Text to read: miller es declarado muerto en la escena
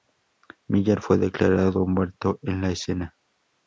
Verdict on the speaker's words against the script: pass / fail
fail